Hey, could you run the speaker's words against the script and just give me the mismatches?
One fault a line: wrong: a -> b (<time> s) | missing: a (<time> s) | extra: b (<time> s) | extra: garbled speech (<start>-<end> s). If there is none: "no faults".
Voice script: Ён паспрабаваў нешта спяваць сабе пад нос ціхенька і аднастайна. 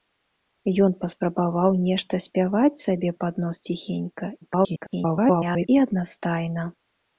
extra: garbled speech (4.4-5.7 s)